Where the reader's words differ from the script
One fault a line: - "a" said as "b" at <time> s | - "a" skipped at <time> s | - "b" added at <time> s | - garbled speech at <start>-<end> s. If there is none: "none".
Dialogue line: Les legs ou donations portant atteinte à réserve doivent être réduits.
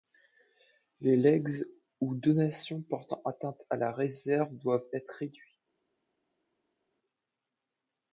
- "la" added at 3.8 s